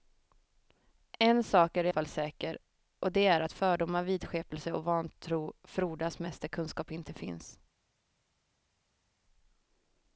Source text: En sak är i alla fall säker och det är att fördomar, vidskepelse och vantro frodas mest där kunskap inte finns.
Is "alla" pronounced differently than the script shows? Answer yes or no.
yes